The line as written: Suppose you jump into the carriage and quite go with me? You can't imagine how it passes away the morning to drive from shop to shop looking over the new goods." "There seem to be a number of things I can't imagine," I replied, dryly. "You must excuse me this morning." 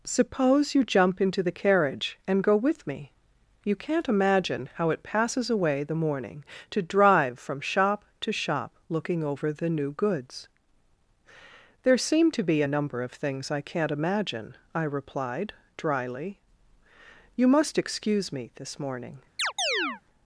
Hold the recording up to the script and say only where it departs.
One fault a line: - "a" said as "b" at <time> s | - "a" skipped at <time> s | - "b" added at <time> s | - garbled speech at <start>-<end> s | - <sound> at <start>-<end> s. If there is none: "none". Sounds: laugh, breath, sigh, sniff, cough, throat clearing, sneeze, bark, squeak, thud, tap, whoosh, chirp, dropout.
- "quite" skipped at 2.4 s
- chirp at 19.4-20.0 s